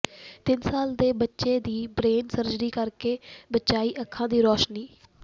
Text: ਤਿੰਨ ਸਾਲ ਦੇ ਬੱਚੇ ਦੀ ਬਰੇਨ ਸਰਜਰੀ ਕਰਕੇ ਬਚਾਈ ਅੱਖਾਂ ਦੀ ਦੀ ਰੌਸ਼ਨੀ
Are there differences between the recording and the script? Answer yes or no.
yes